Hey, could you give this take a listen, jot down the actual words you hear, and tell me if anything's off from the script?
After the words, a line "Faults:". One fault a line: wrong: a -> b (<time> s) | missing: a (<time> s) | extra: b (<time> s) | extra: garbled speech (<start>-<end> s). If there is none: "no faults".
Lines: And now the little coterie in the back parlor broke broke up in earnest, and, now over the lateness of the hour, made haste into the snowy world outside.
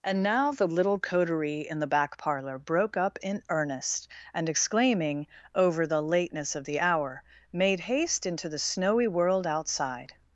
And now the little coterie in the back parlor broke up in earnest, and, exclaiming over the lateness of the hour, made haste into the snowy world outside.
Faults:
missing: broke (3.0 s)
wrong: now -> exclaiming (4.5 s)